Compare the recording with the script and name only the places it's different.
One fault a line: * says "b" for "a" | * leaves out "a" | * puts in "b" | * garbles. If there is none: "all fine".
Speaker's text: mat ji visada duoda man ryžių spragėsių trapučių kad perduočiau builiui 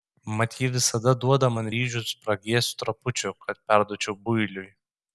all fine